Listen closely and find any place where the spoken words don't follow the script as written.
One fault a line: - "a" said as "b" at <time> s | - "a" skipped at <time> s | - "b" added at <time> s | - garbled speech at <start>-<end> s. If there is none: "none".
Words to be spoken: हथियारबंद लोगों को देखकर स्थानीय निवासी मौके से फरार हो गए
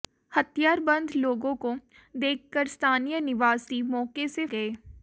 - "फरार हो" skipped at 4.5 s